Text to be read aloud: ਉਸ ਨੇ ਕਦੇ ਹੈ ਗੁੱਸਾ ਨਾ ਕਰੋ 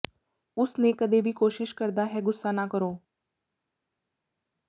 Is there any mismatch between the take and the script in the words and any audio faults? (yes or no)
yes